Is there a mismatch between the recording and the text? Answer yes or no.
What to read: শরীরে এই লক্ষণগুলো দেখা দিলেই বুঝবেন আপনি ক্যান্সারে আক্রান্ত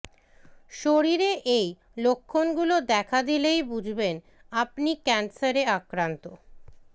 no